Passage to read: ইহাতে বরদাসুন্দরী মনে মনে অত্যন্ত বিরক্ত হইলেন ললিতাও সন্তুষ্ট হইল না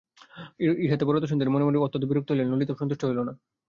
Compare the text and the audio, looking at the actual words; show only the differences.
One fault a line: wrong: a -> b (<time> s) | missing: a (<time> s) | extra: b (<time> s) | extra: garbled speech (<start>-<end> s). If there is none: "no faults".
no faults